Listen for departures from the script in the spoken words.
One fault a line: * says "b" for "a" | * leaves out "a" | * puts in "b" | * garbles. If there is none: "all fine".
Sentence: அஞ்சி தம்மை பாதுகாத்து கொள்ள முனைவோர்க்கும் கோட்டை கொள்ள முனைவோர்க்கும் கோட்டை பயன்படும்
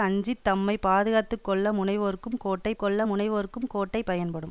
all fine